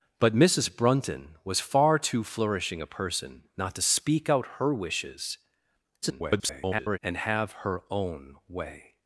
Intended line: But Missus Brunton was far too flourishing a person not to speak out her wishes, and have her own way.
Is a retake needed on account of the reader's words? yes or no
yes